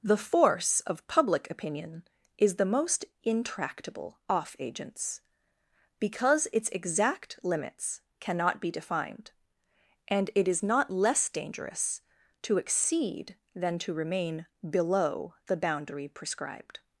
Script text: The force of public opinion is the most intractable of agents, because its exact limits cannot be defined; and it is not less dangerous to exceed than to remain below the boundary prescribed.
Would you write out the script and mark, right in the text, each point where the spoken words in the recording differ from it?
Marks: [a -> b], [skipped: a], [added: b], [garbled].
The force of public opinion is the most intractable [of -> off] agents, because its exact limits cannot be defined; and it is not less dangerous to exceed than to remain below the boundary prescribed.